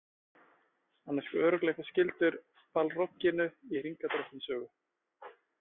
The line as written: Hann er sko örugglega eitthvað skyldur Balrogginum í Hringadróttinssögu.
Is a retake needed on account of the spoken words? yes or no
no